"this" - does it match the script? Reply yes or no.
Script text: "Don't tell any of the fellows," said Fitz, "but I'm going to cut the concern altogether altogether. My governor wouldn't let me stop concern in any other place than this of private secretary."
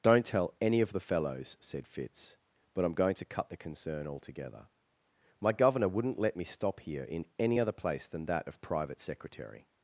no